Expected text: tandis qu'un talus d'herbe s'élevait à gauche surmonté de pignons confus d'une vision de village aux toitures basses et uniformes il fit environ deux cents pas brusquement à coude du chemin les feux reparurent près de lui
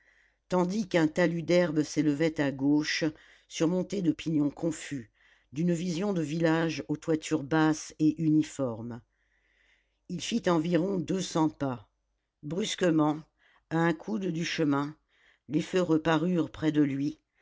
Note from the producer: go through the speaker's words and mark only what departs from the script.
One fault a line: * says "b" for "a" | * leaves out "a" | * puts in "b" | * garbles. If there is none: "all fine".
* puts in "un"